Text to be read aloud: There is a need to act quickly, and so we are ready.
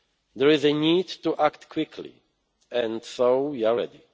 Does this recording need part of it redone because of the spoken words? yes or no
no